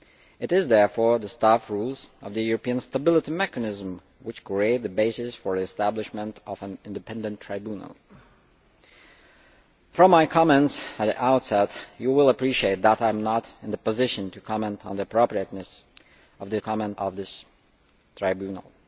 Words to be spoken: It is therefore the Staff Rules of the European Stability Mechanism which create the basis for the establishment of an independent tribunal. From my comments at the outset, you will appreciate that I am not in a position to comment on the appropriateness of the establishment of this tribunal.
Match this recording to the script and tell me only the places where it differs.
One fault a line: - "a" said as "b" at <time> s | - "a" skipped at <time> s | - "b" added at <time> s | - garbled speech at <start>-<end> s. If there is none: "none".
- "establishment" said as "comment" at 16.6 s